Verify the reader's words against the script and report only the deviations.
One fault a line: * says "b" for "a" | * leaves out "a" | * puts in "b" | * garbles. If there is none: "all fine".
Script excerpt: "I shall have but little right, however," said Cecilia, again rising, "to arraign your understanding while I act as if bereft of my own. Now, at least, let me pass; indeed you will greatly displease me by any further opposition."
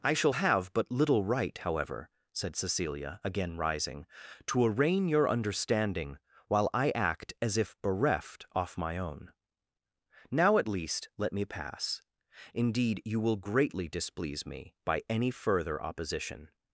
* says "off" for "of"